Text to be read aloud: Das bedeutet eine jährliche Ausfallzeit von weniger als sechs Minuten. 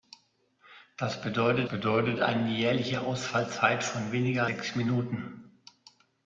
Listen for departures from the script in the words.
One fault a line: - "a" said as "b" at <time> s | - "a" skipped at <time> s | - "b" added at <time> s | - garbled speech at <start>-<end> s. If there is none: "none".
- "bedeutet" added at 1.7 s
- "als" skipped at 4.5 s